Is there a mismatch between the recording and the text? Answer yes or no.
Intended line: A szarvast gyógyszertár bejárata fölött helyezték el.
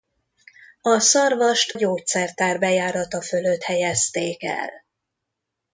no